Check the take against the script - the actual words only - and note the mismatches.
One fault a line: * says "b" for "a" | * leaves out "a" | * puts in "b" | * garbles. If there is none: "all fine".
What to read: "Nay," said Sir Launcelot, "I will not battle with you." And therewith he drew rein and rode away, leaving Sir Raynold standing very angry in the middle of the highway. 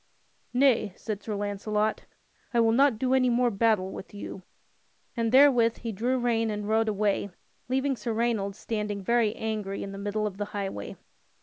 * puts in "do any more"